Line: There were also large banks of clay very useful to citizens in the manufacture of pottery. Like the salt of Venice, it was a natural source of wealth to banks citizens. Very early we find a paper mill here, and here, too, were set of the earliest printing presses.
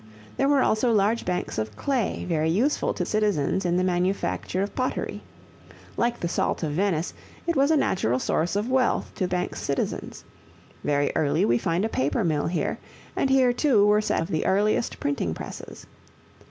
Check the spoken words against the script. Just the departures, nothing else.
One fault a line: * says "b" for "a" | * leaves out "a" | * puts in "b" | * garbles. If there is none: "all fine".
all fine